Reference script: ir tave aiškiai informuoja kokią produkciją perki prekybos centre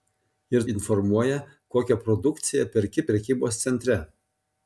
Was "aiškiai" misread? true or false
true